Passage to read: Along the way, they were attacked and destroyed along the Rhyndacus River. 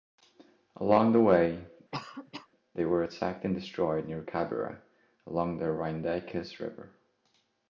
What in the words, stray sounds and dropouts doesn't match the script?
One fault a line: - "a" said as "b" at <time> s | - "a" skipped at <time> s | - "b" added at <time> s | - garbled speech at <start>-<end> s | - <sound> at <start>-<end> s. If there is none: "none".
- cough at 1.9-2.5 s
- "near Cabira" added at 4.0 s